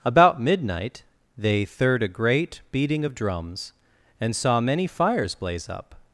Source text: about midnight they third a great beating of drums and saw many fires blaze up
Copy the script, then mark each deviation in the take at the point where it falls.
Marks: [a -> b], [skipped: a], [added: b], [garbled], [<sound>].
about midnight they third a great beating of drums and saw many fires blaze up